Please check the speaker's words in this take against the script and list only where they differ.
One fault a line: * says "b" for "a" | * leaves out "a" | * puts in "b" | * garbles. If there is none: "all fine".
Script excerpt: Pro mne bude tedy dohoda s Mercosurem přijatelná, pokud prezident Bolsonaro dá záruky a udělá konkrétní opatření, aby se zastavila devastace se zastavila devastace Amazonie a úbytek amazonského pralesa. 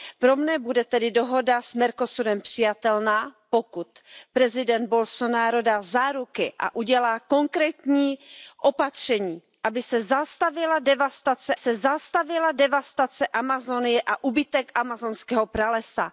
all fine